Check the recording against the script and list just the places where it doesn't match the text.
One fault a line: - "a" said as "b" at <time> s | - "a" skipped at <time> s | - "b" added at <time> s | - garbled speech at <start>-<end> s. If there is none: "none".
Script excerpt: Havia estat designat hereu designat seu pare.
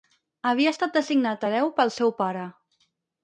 - "designat" said as "pel" at 1.8 s